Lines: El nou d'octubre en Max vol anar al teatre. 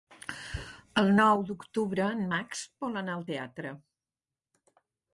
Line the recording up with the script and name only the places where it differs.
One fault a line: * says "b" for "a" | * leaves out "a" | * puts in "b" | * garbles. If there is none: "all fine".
all fine